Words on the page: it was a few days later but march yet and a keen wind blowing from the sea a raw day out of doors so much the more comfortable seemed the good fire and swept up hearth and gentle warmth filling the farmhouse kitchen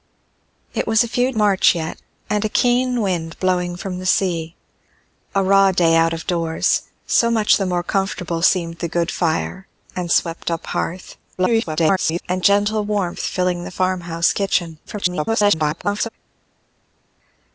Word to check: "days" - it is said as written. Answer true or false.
false